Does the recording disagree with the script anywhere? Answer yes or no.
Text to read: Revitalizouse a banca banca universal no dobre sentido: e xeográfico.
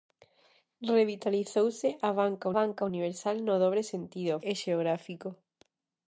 no